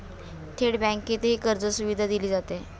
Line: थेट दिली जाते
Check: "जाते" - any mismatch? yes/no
no